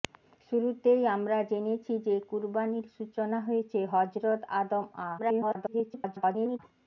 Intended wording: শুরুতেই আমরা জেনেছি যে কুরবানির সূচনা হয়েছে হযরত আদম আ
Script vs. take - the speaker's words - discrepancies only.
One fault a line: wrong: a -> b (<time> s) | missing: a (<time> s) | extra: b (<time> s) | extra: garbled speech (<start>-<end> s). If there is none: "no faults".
extra: garbled speech (5.2-6.6 s)